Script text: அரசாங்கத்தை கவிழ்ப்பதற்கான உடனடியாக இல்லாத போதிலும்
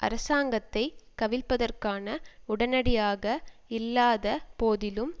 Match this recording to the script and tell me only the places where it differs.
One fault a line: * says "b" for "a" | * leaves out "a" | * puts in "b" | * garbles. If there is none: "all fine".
all fine